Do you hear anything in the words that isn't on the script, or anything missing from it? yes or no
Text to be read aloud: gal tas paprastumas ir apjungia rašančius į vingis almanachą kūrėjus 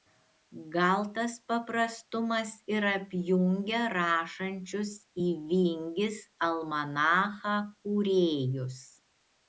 no